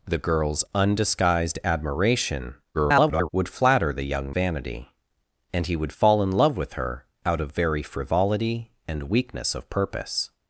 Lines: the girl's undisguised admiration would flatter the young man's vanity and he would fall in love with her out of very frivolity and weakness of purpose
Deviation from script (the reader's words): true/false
true